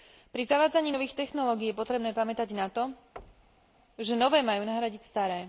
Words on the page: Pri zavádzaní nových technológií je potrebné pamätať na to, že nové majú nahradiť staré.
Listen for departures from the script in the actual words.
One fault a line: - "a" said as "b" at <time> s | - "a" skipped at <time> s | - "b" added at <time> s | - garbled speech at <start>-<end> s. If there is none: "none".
none